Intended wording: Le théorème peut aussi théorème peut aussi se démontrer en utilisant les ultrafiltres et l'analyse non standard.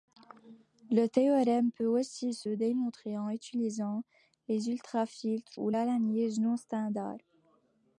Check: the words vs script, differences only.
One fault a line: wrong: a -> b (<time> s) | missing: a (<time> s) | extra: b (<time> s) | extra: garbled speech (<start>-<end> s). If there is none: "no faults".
missing: théorème peut aussi (2.3 s)
wrong: et -> ou (5.5 s)